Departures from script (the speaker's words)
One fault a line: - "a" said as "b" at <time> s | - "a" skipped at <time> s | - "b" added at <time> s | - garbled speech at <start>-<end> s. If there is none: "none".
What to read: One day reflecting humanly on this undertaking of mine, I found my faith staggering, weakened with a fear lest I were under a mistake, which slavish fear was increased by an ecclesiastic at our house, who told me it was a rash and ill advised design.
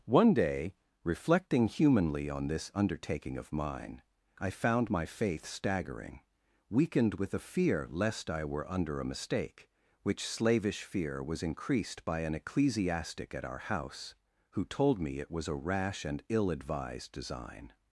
none